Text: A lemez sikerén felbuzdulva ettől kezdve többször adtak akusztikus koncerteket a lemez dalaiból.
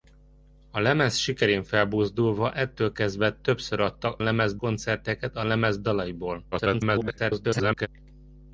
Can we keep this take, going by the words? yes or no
no